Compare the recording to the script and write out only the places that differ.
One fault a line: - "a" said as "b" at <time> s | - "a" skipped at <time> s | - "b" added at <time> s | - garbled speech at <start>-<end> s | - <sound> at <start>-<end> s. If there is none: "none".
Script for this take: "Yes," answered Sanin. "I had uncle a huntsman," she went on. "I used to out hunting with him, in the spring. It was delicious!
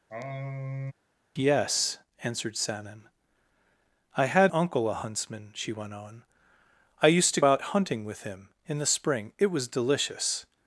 - sigh at 0.1-0.9 s